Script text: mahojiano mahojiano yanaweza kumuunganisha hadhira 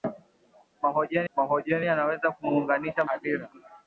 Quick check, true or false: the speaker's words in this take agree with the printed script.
true